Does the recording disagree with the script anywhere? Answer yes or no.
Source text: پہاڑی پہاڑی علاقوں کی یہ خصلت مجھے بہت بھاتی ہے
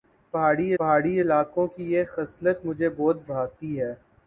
no